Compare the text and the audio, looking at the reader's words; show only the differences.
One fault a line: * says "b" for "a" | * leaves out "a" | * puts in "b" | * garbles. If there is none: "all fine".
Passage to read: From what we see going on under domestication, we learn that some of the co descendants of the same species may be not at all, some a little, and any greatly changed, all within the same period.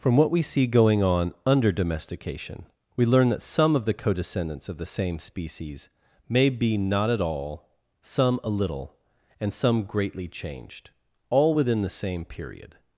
* says "some" for "any"